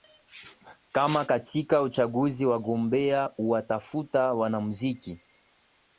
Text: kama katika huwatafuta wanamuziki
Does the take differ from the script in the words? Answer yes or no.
yes